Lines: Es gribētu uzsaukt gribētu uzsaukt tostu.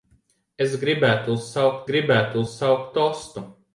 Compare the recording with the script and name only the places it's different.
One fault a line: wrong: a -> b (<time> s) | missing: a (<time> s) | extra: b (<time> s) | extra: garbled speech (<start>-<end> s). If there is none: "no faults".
no faults